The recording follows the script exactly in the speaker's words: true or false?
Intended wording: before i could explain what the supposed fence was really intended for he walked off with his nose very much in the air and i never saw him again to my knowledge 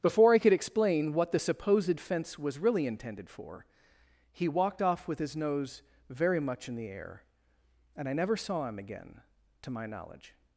true